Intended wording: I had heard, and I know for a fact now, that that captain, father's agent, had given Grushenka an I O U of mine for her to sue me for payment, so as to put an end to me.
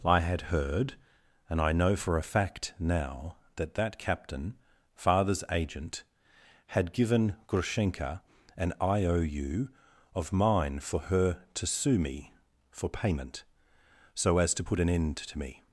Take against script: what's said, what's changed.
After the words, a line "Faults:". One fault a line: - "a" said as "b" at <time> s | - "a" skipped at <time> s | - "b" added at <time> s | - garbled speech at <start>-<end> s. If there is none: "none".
I had heard, and I know for a fact now, that that captain, father's agent, had given Grushenka an I O U of mine for her to sue me for payment, so as to put an end to me.
Faults:
none